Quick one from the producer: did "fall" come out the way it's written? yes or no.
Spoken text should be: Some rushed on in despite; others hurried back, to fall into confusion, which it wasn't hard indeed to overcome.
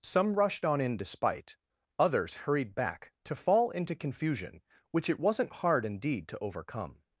yes